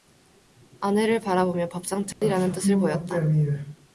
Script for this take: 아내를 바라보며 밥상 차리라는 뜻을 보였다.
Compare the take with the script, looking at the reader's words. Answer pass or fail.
pass